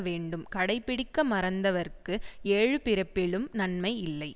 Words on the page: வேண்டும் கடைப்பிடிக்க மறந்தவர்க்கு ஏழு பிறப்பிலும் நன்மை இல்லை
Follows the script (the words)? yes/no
yes